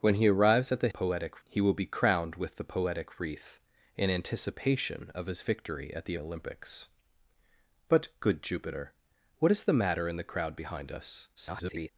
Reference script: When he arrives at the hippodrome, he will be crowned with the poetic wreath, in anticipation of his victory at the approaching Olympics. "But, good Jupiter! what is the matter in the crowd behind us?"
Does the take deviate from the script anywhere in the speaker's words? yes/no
yes